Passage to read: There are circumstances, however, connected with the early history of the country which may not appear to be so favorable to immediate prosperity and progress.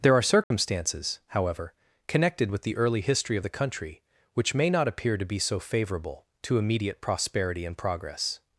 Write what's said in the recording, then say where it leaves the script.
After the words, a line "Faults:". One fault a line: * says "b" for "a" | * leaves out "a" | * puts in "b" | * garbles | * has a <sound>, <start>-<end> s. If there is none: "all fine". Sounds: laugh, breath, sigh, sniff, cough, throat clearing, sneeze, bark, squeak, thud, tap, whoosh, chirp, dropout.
There are circumstances, however, connected with the early history of the country which may not appear to be so favorable to immediate prosperity and progress.
Faults:
* has a dropout, 0.4-0.5 s